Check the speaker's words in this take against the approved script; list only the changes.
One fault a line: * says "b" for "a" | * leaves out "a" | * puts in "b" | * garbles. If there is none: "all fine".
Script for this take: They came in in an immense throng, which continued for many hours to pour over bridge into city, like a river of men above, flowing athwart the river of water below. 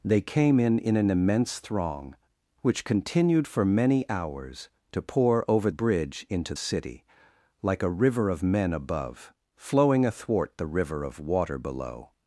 all fine